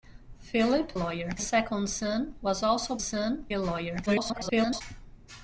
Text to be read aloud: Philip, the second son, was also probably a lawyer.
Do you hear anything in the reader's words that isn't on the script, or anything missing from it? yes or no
yes